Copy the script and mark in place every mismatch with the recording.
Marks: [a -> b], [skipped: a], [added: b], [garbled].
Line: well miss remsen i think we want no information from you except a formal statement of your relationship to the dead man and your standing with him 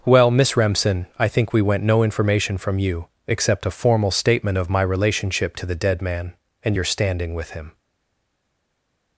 well miss remsen i think we [want -> went] no information from you except a formal statement of [your -> my] relationship to the dead man and your standing with him